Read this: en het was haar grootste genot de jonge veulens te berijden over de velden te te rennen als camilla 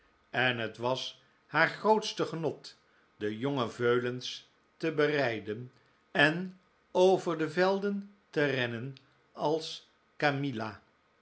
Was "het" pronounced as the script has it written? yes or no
yes